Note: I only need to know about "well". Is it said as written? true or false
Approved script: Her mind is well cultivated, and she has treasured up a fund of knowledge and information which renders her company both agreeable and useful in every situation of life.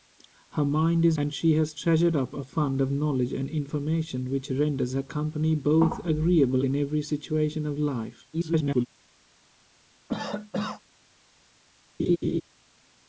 false